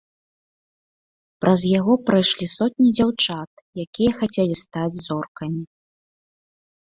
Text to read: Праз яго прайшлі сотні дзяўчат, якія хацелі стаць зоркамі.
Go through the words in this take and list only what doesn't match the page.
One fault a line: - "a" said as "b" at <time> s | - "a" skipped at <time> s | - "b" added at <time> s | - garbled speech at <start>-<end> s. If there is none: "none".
none